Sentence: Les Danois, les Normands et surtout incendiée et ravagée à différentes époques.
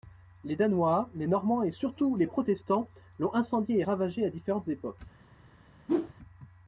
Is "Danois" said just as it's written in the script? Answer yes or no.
yes